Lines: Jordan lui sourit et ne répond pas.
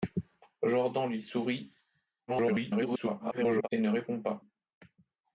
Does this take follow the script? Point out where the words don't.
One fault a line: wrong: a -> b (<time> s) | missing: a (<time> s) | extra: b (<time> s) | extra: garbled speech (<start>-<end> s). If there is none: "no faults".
extra: garbled speech (2.3-3.7 s)